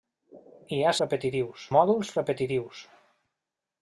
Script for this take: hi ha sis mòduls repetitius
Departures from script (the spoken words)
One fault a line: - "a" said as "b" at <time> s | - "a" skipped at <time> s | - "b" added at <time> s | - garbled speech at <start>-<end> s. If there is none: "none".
- "sis" said as "repetitius" at 1.0 s